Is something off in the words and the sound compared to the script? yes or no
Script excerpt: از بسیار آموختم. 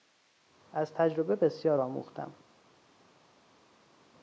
yes